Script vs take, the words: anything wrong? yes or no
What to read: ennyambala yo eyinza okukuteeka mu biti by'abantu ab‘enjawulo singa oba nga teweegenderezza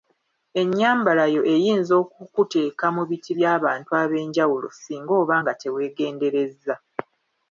no